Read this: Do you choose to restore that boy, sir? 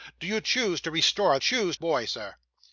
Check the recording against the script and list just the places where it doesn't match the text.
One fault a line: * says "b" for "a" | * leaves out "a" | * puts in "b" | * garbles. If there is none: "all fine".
* says "choose" for "that"